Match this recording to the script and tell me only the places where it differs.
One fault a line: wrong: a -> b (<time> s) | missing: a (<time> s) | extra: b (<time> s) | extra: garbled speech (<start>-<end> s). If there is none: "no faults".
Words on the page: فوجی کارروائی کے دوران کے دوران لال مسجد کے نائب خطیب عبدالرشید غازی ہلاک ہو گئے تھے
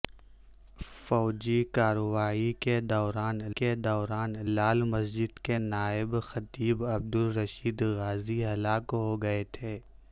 no faults